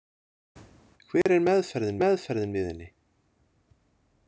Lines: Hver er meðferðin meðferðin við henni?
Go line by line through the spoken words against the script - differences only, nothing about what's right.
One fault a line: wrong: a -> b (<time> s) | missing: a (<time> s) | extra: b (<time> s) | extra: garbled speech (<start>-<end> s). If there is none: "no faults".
no faults